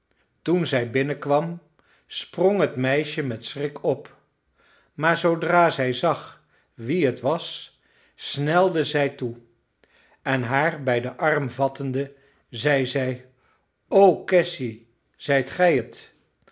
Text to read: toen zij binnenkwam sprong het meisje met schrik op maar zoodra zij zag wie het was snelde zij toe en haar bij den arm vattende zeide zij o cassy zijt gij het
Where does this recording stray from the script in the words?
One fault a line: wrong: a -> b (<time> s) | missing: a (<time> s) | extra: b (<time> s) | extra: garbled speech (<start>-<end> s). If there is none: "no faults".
no faults